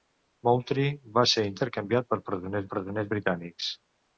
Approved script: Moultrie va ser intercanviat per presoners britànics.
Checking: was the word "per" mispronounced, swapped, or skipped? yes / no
no